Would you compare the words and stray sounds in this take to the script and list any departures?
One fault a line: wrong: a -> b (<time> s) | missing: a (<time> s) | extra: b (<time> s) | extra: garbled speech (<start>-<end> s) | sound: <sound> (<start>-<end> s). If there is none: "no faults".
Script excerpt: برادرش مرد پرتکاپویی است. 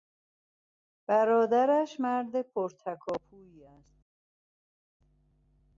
no faults